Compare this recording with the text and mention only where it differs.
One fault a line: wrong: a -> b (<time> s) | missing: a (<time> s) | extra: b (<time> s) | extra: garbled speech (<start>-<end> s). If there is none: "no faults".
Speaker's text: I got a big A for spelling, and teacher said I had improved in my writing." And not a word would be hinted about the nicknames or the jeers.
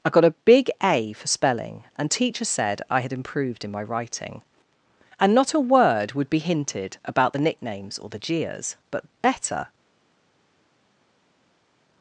extra: But better (8.9 s)